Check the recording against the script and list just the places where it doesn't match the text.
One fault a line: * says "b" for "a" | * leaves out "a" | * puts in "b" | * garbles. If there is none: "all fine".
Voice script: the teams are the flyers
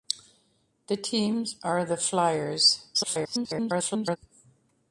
* garbles